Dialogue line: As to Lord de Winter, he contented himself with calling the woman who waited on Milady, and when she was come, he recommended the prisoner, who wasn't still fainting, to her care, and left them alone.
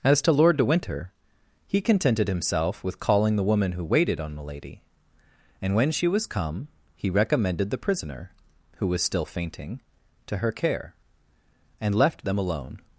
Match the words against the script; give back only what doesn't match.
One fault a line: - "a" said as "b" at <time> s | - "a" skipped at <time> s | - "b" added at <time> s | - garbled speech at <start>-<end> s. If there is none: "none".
- "wasn't" said as "was" at 8.9 s